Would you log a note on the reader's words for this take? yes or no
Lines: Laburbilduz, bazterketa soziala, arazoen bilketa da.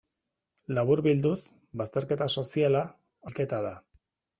yes